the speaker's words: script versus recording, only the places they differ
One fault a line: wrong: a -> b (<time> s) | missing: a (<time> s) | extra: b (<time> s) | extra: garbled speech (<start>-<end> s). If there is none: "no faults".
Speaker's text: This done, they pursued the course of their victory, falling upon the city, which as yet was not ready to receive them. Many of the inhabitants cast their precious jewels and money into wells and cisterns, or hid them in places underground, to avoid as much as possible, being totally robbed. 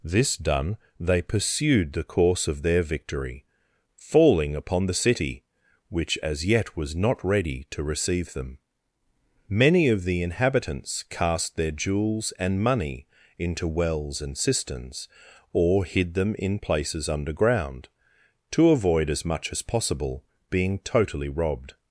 missing: precious (11.7 s)